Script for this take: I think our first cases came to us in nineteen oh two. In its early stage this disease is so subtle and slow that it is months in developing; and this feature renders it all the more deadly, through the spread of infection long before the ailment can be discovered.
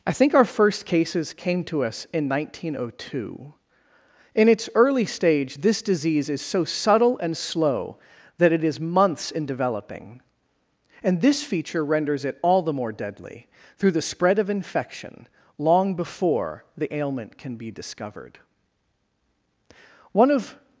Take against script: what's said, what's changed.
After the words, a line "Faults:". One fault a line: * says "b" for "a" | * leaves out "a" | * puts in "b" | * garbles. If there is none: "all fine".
I think our first cases came to us in nineteen oh two. In its early stage this disease is so subtle and slow that it is months in developing; and this feature renders it all the more deadly, through the spread of infection long before the ailment can be discovered. One of
Faults:
* puts in "One of"